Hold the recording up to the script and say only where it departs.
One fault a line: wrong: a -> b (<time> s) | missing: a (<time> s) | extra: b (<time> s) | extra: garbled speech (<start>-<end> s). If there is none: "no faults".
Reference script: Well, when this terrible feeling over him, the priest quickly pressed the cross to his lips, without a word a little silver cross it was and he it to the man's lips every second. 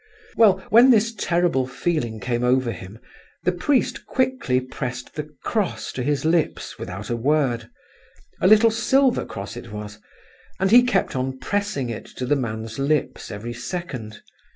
extra: came (2.2 s)
extra: kept on pressing (10.8 s)